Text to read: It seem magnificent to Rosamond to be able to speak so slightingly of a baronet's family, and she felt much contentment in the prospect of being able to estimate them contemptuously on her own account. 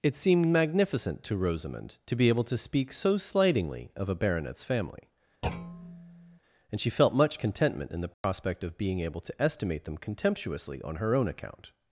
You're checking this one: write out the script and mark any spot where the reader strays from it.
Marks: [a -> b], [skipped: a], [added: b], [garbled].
It [seem -> seemed] magnificent to Rosamond to be able to speak so slightingly of a baronet's family, and she felt much contentment in the prospect of being able to estimate them contemptuously on her own account.